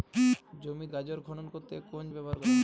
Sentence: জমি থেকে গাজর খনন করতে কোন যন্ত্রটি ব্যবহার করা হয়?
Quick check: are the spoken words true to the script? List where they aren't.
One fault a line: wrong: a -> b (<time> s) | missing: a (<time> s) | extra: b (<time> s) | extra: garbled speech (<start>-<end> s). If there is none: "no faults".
missing: থেকে (0.9 s)
missing: যন্ত্রটি (2.0 s)